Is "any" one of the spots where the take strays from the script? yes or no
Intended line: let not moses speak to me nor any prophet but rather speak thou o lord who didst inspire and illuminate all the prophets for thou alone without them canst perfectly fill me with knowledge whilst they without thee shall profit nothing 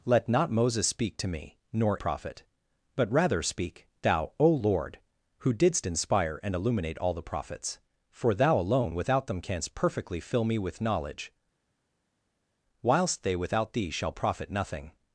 yes